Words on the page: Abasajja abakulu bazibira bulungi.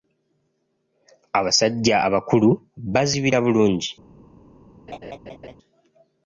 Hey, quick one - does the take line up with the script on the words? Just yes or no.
yes